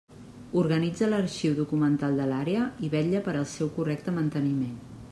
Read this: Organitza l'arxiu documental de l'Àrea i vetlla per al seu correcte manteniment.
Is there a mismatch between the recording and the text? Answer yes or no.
no